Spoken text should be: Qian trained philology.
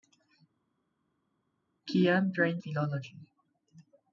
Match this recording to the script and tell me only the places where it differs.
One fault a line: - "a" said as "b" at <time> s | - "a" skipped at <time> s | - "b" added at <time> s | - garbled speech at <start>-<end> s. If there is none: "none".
none